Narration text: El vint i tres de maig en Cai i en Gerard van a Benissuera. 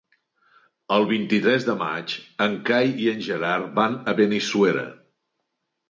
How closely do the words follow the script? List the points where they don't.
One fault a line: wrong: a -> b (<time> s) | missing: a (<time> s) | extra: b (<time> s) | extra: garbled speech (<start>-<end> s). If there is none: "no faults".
no faults